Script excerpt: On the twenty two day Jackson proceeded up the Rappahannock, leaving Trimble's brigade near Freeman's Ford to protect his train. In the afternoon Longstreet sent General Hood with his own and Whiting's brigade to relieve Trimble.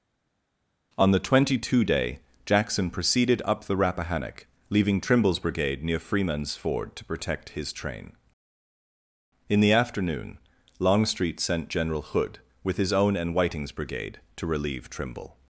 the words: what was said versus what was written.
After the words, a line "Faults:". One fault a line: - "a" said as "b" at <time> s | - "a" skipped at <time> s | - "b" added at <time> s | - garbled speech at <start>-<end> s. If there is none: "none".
On the twenty two day Jackson proceeded up the Rappahannock, leaving Trimble's brigade near Freeman's Ford to protect his train. In the afternoon Longstreet sent General Hood with his own and Whiting's brigade to relieve Trimble.
Faults:
none